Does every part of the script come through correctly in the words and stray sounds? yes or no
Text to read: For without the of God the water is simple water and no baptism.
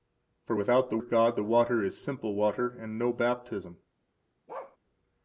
no